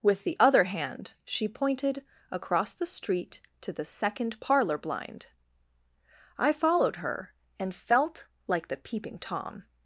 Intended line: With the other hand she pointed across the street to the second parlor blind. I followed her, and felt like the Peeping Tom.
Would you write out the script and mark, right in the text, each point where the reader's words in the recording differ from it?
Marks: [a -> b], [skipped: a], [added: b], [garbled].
With the other hand she pointed across the street to the second parlor blind. I followed her, and felt like the Peeping Tom.